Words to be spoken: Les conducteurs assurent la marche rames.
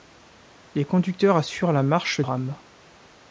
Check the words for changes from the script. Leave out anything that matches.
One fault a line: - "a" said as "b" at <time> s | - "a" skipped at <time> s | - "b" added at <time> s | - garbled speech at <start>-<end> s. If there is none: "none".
none